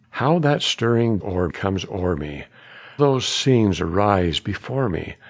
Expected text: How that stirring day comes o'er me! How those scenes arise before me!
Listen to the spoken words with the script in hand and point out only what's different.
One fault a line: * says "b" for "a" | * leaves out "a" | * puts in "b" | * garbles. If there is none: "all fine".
* says "o'er" for "day"
* leaves out "How"